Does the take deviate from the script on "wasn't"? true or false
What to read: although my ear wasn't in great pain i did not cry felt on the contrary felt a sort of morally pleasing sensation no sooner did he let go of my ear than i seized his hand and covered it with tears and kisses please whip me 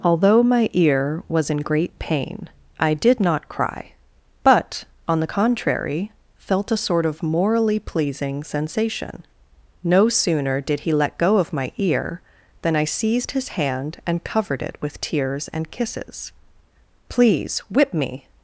true